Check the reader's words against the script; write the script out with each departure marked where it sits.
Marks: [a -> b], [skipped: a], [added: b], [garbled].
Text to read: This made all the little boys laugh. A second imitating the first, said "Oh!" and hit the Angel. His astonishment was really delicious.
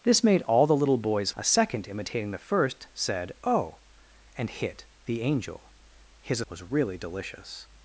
This made all the little boys [skipped: laugh.] A second imitating the first, said "Oh!" and hit the Angel. His [skipped: astonishment] was really delicious.